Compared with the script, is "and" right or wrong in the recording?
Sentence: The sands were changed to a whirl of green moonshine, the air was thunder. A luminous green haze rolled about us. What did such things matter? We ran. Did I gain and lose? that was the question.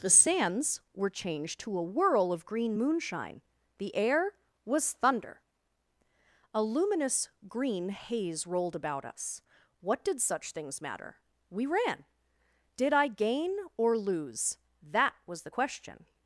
wrong